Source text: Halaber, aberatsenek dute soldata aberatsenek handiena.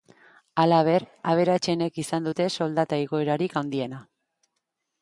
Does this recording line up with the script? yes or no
no